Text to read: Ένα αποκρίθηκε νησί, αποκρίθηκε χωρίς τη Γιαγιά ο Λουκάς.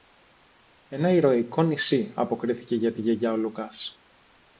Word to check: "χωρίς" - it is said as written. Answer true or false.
false